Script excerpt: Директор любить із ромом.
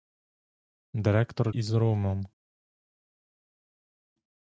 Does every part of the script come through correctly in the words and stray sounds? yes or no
no